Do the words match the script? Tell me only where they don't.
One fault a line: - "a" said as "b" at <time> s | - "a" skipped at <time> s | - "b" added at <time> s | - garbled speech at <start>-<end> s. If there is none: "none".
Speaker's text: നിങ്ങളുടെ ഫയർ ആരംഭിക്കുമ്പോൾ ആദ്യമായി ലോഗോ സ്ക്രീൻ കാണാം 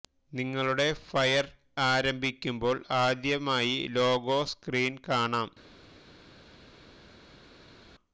none